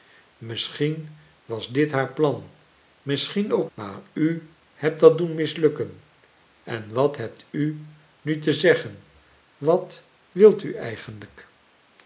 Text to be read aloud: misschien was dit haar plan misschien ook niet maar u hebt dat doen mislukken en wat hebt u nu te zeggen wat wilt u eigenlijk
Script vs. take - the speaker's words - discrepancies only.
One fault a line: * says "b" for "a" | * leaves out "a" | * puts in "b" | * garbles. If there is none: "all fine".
* leaves out "niet"